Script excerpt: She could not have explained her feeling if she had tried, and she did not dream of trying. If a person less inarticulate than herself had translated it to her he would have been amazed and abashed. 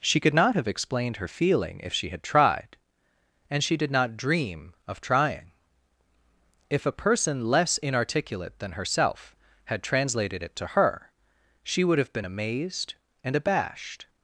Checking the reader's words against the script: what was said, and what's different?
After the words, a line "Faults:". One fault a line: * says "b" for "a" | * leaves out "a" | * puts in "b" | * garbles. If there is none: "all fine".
She could not have explained her feeling if she had tried, and she did not dream of trying. If a person less inarticulate than herself had translated it to her she would have been amazed and abashed.
Faults:
* says "she" for "he"